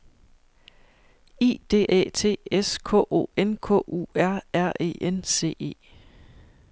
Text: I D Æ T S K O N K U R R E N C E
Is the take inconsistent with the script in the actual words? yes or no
no